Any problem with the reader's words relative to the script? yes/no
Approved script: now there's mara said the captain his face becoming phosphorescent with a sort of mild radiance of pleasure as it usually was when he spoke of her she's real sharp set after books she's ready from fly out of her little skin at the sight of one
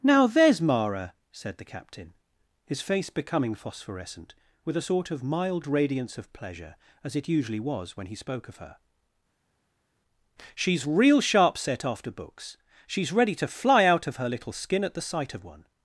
yes